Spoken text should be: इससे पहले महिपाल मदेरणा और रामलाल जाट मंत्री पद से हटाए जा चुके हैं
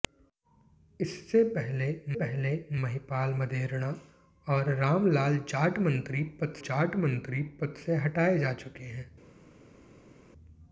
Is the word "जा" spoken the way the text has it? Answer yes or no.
yes